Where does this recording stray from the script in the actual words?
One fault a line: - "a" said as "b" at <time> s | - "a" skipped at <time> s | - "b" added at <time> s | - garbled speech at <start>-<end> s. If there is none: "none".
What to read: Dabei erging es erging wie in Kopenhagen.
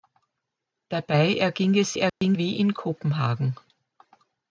none